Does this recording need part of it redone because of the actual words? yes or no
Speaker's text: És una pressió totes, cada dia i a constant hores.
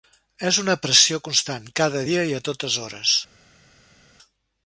yes